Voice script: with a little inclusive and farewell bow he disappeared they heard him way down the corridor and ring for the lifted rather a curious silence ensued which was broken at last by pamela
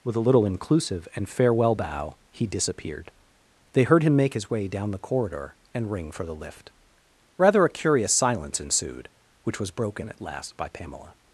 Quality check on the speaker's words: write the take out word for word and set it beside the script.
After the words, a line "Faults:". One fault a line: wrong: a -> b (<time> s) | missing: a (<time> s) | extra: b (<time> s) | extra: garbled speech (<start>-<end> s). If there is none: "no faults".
with a little inclusive and farewell bow he disappeared they heard him make his way down the corridor and ring for the lift rather a curious silence ensued which was broken at last by pamela
Faults:
extra: make his (4.2 s)
wrong: lifted -> lift (6.3 s)